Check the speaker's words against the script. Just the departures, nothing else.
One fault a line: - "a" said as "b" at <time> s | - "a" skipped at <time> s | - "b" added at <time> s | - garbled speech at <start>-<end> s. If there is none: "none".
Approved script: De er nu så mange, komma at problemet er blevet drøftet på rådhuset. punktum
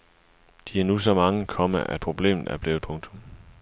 - "drøftet på rådhuset" skipped at 2.9 s